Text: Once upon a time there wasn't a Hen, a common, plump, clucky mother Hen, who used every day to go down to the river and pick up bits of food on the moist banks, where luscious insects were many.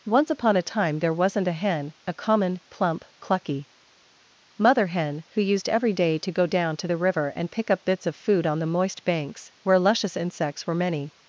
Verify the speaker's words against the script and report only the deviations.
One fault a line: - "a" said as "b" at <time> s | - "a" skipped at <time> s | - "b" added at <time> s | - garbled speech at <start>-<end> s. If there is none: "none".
none